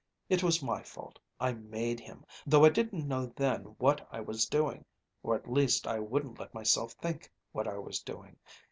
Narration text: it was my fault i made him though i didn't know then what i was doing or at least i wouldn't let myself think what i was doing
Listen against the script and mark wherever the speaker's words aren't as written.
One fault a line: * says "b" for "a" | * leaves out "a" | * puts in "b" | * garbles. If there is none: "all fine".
all fine